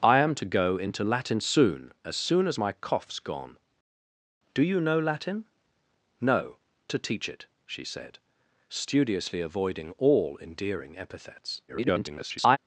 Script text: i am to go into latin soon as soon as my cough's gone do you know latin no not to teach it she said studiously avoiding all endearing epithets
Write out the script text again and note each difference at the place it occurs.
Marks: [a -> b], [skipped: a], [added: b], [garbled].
i am to go into latin soon as soon as my cough's gone do you know latin no [skipped: not] to teach it she said studiously avoiding all endearing epithets [garbled]